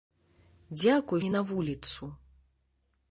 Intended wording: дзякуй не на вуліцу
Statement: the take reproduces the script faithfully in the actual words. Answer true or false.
true